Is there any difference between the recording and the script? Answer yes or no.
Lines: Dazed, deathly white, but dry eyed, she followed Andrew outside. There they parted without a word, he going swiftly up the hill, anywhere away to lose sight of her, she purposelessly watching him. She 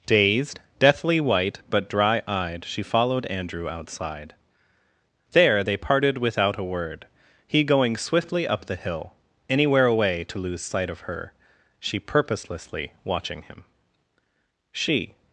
no